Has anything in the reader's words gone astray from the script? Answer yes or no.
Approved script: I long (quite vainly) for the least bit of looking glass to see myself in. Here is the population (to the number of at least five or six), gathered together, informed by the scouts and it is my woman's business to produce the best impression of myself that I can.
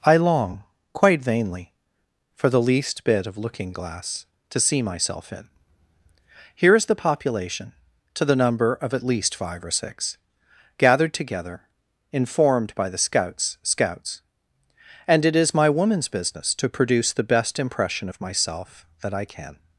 yes